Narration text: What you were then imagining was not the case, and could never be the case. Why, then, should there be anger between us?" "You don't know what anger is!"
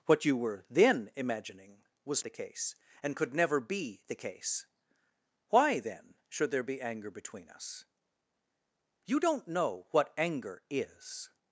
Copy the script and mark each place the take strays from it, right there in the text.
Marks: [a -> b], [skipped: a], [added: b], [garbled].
What you were then imagining was [skipped: not] the case, and could never be the case. Why, then, should there be anger between us?" "You don't know what anger is!"